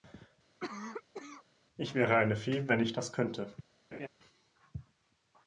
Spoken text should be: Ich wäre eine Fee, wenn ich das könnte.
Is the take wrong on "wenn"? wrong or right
right